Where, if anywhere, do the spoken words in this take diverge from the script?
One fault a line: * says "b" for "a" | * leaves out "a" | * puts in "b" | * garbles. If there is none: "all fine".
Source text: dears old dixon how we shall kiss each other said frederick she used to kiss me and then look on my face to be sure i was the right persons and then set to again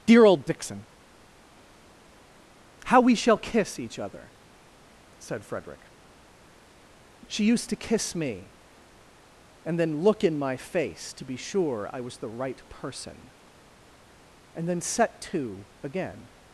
* says "dear" for "dears"
* says "in" for "on"
* says "person" for "persons"